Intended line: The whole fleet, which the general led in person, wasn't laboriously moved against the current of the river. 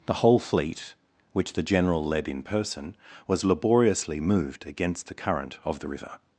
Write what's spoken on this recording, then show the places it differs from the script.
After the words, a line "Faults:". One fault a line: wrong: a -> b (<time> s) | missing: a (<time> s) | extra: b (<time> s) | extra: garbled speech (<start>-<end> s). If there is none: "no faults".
The whole fleet, which the general led in person, was laboriously moved against the current of the river.
Faults:
wrong: wasn't -> was (3.3 s)